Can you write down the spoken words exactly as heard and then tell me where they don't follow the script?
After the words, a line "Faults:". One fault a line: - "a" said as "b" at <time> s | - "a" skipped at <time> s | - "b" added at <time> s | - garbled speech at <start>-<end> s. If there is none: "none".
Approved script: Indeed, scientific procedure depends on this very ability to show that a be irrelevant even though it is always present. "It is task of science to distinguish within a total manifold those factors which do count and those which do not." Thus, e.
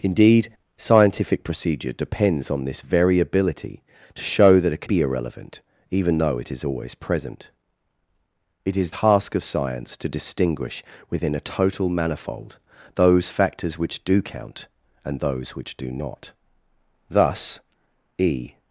Indeed, scientific procedure depends on this very ability to show that a be irrelevant even though it is always present. "It is task of science to distinguish within a total manifold those factors which do count and those which do not." Thus, e.
Faults:
none